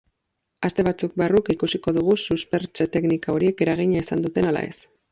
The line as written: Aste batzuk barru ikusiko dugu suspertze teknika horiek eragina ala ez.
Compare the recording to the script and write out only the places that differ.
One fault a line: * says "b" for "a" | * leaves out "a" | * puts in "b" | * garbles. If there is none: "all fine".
* puts in "izan duten"